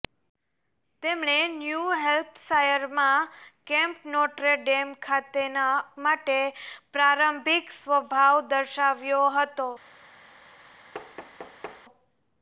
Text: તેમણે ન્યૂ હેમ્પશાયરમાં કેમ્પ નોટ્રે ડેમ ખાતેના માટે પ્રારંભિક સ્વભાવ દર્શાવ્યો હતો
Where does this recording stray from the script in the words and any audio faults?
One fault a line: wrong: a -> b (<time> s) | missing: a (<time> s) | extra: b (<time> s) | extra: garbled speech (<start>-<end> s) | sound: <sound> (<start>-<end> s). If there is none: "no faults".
sound: thud (10.9-11.8 s)